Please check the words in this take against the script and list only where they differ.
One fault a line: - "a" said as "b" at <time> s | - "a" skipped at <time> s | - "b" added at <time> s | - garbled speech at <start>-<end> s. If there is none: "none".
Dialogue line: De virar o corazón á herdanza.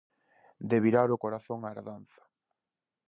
none